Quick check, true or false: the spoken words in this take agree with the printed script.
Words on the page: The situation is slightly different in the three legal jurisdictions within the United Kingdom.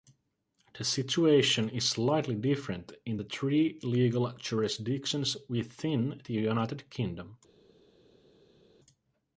true